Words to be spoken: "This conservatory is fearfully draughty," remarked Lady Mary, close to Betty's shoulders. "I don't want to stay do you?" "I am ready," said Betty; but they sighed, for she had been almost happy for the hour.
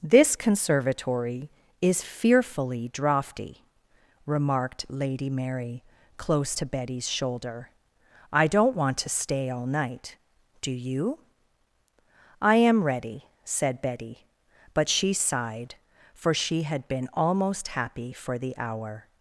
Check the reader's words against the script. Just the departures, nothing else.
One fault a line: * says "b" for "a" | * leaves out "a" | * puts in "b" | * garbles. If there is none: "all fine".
* says "shoulder" for "shoulders"
* puts in "all night"
* says "she" for "they"